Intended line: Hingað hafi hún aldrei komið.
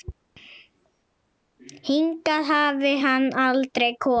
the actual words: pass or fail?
fail